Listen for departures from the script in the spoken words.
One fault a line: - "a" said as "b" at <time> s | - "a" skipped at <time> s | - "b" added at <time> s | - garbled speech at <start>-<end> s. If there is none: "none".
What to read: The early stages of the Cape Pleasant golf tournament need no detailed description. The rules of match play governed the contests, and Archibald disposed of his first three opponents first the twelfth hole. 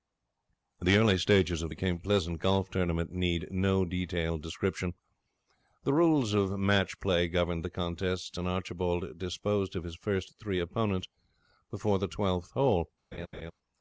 - "first" said as "before" at 11.7 s